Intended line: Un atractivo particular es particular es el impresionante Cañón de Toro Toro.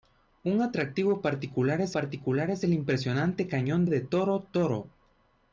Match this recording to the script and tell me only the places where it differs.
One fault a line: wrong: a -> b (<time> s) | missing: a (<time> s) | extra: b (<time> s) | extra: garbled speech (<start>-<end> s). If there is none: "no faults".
no faults